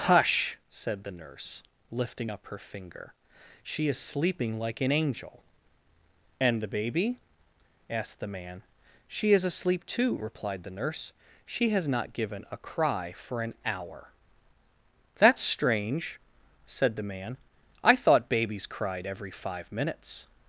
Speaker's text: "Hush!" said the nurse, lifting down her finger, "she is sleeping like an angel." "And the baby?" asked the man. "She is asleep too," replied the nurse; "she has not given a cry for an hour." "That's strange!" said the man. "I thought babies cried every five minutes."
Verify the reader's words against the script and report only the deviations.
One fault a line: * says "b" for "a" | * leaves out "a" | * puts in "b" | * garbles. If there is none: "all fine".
* says "up" for "down"